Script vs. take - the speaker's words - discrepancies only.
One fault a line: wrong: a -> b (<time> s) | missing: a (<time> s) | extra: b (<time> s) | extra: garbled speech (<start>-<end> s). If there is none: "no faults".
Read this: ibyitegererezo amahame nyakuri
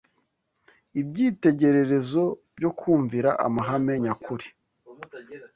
extra: byo kumvira (2.6 s)